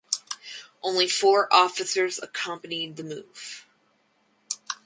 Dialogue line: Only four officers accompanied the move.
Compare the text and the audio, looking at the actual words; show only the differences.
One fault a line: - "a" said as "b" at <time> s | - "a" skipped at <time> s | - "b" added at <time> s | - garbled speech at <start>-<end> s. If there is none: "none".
none